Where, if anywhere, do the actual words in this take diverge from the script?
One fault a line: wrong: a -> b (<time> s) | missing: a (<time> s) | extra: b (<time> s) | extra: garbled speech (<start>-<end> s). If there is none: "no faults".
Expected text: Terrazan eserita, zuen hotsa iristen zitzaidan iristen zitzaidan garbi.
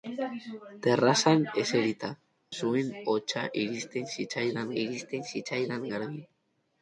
no faults